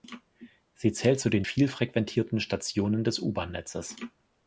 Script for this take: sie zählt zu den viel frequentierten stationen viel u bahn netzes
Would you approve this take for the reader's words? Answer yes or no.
no